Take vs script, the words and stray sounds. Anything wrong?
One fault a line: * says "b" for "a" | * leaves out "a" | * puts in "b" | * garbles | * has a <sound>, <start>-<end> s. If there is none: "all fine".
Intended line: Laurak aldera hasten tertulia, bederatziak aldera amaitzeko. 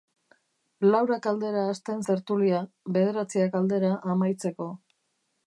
all fine